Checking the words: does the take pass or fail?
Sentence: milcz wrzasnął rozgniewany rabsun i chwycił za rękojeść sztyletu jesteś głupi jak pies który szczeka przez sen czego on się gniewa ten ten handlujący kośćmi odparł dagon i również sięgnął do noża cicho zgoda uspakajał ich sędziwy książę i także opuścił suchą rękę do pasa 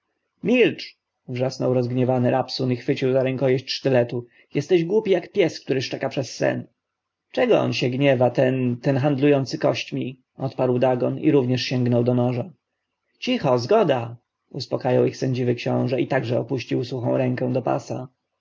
pass